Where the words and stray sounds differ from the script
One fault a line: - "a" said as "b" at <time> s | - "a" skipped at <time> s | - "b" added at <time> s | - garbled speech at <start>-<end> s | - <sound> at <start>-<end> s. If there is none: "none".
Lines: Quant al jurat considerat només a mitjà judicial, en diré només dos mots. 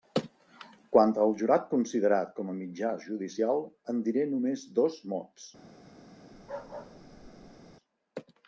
- "només" said as "com" at 2.4 s
- bark at 6.3-7.7 s